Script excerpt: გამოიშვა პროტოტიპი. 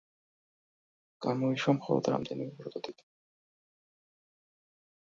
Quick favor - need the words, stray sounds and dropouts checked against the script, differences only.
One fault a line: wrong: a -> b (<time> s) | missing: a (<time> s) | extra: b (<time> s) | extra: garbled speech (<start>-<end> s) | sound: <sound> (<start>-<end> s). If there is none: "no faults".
extra: მხოლოდ რამდენიმე (1.8 s)